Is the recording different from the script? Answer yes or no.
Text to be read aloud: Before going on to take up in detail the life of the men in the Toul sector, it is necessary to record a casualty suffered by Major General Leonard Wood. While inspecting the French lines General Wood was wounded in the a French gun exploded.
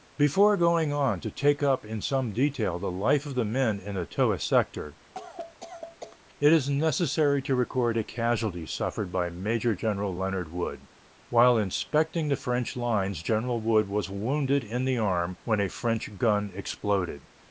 yes